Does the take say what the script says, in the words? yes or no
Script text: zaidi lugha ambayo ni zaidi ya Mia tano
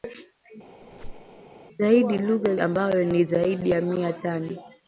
yes